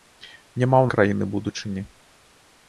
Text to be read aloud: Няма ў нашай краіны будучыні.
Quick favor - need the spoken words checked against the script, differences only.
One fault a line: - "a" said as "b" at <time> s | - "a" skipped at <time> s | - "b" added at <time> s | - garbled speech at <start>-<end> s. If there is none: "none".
- "нашай" skipped at 0.9 s